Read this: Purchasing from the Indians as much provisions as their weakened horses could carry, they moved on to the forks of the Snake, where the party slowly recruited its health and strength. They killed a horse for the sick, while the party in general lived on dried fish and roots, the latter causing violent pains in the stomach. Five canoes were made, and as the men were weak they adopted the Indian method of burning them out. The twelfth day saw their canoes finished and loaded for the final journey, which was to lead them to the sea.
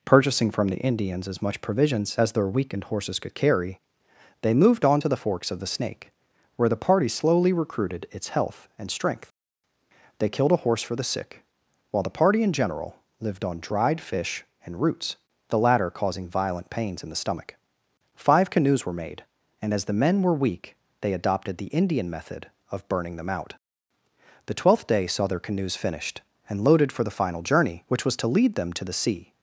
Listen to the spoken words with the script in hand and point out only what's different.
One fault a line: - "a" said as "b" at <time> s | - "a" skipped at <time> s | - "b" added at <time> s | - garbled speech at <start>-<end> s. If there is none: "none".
none